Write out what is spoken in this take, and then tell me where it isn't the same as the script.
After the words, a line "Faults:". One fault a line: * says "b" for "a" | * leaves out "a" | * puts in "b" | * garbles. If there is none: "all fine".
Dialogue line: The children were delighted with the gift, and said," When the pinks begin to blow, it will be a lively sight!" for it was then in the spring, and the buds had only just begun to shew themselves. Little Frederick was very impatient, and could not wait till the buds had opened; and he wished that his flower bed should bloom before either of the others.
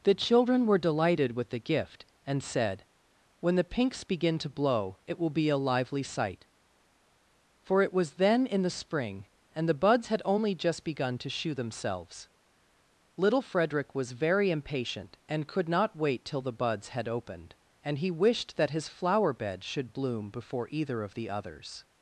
The children were delighted with the gift, and said," When the pinks begin to blow, it will be a lively sight!" for it was then in the spring, and the buds had only just begun to shew themselves. Little Frederick was very impatient, and could not wait till the buds had opened; and he wished that his flower bed should bloom before either of the others.
Faults:
all fine